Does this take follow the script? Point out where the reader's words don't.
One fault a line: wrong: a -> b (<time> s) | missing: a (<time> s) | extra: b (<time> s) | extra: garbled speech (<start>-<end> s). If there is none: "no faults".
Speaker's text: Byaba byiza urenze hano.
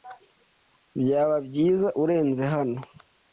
no faults